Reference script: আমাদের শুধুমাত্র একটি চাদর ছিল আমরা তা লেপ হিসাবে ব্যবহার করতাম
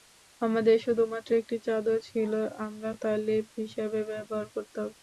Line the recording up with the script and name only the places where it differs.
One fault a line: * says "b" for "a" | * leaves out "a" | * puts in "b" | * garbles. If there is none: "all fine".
all fine